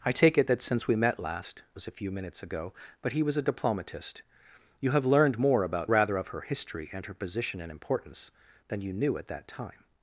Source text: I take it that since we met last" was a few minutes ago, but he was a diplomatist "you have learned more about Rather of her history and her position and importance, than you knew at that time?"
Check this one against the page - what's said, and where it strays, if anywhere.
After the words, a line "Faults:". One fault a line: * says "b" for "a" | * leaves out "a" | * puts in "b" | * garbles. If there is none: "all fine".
I take it that since we met last" was a few minutes ago, but he was a diplomatist "you have learned more about Rather of her history and her position and importance, than you knew at that time?"
Faults:
all fine